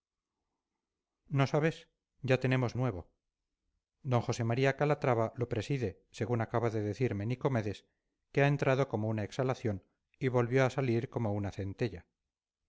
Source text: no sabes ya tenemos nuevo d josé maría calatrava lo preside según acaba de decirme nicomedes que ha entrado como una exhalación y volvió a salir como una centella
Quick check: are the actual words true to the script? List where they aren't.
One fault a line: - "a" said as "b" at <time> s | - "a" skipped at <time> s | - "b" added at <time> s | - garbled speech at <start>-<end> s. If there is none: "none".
none